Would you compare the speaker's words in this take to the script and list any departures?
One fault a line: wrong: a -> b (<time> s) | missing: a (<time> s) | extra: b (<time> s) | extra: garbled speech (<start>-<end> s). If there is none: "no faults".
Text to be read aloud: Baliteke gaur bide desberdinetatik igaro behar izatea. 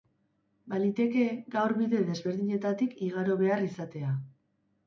no faults